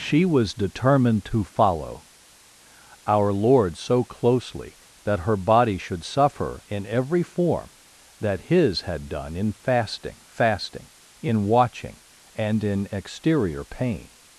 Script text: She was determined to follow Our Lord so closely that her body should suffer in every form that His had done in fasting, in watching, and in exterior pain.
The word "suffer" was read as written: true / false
true